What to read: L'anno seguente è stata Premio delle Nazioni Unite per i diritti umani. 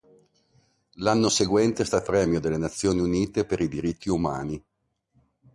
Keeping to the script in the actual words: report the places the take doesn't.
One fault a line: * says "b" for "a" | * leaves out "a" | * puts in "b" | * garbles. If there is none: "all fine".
all fine